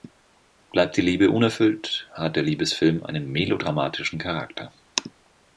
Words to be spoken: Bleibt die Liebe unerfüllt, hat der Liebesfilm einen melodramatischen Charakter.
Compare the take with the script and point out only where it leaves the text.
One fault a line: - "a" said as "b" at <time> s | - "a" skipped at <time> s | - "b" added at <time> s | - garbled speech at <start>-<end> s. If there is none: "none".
none